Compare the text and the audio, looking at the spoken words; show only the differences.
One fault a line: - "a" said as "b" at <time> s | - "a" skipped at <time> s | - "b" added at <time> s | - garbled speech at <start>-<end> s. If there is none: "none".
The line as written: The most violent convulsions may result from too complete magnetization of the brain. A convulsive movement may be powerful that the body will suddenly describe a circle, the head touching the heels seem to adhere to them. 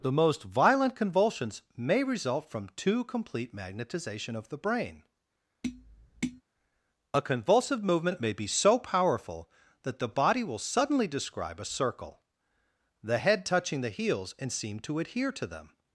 - "so" added at 8.5 s
- "and" added at 14.4 s